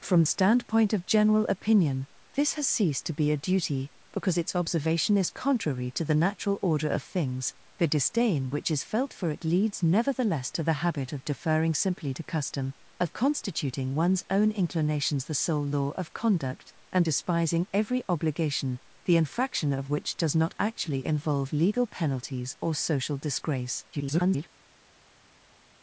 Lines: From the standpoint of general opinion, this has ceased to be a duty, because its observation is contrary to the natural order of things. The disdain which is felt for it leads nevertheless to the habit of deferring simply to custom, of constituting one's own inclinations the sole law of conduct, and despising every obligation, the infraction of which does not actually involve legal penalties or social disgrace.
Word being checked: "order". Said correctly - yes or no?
yes